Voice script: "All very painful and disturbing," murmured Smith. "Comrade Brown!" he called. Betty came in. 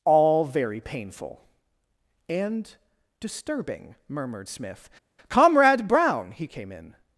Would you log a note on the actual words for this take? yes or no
yes